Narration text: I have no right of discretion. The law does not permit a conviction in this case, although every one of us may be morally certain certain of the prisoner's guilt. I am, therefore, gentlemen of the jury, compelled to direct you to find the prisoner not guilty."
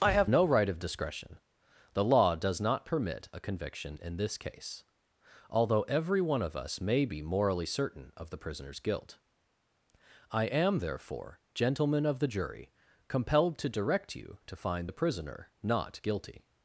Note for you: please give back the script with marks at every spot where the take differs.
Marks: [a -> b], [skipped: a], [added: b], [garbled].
I have no right of discretion. The law does not permit a conviction in this case, although every one of us may be morally certain [skipped: certain] of the prisoner's guilt. I am, therefore, gentlemen of the jury, compelled to direct you to find the prisoner not guilty."